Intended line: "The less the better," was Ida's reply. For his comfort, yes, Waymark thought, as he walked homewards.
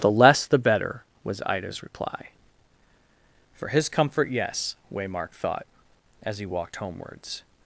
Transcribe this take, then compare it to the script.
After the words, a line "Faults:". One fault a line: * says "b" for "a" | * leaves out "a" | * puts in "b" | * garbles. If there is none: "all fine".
"The less the better," was Ida's reply. For his comfort, yes, Waymark thought, as he walked homewards.
Faults:
all fine